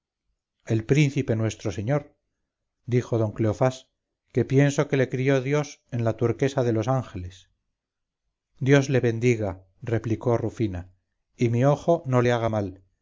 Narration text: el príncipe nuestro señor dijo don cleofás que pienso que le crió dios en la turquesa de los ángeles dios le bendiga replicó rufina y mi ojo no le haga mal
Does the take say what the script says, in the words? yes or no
yes